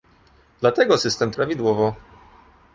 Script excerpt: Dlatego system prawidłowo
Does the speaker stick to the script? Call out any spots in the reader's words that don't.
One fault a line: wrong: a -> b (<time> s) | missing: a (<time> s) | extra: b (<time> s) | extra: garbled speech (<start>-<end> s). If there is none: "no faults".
no faults